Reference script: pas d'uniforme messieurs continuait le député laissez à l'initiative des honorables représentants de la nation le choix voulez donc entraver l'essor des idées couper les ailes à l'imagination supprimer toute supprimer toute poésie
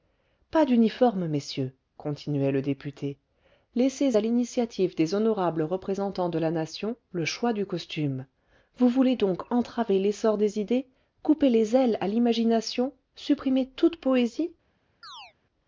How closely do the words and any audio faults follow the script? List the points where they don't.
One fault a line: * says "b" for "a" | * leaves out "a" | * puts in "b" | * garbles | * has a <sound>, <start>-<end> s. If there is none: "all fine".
* puts in "du costume vous"
* leaves out "supprimer toute"
* has a chirp, 15.0-15.3 s